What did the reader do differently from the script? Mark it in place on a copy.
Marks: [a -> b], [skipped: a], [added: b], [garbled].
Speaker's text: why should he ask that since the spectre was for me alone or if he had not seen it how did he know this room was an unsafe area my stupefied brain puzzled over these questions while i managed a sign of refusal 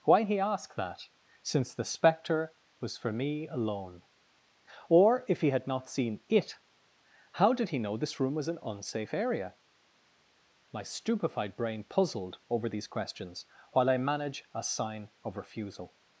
why [skipped: should] he ask that since the spectre was for me alone or if he had not seen it how did he know this room was an unsafe area my stupefied brain puzzled over these questions while i [managed -> manage] a sign of refusal